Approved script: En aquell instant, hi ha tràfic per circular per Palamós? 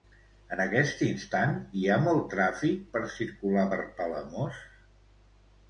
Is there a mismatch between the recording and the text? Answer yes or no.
yes